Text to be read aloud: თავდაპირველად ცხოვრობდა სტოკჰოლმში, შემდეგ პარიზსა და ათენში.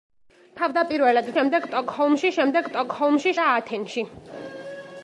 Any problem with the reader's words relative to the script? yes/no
yes